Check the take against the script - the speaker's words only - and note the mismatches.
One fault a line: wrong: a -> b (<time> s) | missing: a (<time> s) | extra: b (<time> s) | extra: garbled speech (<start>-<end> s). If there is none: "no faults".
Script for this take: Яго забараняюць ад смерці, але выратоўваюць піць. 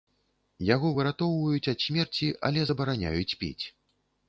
wrong: забараняюць -> выратоўваюць (1.0 s)
wrong: выратоўваюць -> забараняюць (2.7 s)